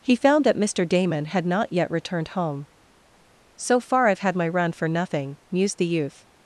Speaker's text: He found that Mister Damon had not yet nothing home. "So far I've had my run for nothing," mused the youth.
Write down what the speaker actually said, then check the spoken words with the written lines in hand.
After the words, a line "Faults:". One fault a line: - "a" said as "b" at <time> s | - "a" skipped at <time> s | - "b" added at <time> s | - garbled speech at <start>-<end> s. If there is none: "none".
He found that Mister Damon had not yet returned home. "So far I've had my run for nothing," mused the youth.
Faults:
- "nothing" said as "returned" at 1.9 s